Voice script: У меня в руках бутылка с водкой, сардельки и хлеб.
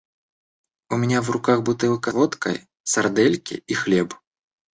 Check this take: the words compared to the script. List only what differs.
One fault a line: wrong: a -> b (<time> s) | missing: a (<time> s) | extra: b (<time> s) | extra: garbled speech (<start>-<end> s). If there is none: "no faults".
missing: с (2.1 s)